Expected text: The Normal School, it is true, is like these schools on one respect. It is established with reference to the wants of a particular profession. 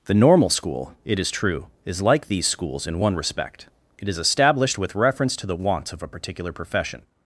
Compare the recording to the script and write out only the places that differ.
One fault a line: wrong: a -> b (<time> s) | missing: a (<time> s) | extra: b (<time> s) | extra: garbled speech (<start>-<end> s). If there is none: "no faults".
wrong: on -> in (2.9 s)